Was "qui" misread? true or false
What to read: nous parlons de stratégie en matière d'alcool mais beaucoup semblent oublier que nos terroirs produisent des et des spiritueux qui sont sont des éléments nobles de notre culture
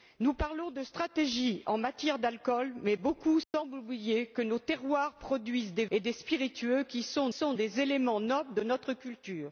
false